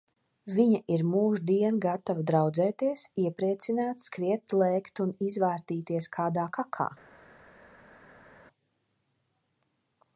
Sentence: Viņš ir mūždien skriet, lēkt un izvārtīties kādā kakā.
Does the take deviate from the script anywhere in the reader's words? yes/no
yes